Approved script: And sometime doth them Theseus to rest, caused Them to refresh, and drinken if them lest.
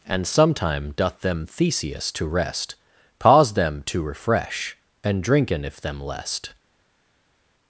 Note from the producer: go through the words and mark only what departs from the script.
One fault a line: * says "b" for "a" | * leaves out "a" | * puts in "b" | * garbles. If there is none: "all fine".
* says "pause" for "caused"